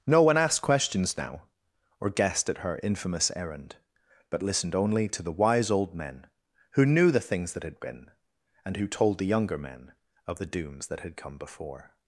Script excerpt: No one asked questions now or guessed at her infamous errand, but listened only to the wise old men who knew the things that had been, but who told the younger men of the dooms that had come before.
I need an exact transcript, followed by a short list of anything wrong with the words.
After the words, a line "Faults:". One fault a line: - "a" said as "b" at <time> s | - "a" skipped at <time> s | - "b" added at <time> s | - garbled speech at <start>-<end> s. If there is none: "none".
No one asked questions now or guessed at her infamous errand, but listened only to the wise old men who knew the things that had been, and who told the younger men of the dooms that had come before.
Faults:
- "but" said as "and" at 8.7 s